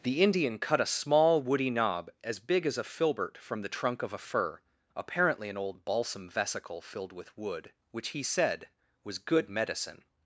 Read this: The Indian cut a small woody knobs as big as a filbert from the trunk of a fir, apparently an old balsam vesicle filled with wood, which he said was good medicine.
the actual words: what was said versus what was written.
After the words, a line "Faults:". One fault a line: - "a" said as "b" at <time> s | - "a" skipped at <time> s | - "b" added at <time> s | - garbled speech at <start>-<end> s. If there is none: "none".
The Indian cut a small woody knob as big as a filbert from the trunk of a fir, apparently an old balsam vesicle filled with wood, which he said was good medicine.
Faults:
- "knobs" said as "knob" at 1.7 s